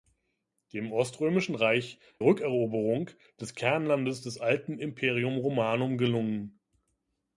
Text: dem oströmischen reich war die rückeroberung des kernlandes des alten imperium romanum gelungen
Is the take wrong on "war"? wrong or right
wrong